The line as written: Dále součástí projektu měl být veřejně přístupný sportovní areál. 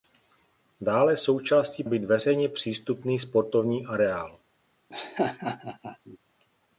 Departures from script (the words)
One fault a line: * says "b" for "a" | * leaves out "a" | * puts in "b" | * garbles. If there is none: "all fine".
* leaves out "projektu měl"